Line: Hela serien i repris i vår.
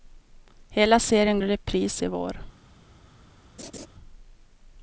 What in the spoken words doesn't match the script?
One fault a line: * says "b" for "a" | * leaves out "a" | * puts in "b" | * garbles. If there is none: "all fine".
all fine